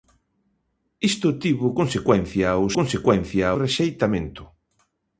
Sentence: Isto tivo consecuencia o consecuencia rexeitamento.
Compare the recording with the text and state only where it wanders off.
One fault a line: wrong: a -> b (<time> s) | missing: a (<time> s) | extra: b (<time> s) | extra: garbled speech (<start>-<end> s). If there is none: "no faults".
no faults